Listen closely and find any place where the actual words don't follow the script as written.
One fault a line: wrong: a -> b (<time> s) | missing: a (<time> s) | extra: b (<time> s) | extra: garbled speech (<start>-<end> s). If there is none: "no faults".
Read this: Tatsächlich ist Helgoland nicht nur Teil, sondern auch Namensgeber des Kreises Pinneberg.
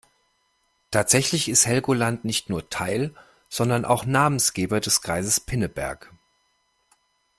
no faults